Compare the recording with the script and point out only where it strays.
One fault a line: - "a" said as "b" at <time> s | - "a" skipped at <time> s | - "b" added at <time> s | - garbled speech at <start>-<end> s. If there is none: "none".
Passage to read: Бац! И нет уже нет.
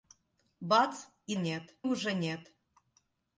none